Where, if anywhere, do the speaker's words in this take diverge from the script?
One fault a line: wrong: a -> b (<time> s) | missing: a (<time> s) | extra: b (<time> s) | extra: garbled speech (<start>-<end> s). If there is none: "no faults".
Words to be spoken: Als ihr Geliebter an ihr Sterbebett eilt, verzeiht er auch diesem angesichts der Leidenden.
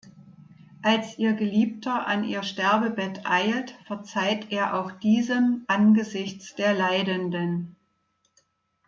no faults